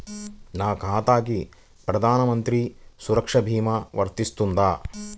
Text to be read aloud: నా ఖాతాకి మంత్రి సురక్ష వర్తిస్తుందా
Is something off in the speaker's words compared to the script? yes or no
yes